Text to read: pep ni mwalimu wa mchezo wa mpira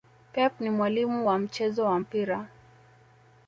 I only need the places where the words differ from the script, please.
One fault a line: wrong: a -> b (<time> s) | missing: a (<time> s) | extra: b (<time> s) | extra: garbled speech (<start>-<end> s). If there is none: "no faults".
no faults